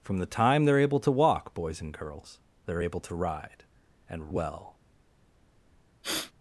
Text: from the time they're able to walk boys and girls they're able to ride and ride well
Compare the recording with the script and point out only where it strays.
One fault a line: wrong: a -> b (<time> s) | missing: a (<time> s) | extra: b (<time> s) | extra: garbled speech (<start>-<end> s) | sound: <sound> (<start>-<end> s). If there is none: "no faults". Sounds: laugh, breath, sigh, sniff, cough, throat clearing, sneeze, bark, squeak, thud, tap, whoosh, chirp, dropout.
missing: ride (4.3 s)
sound: sniff (6.0-6.3 s)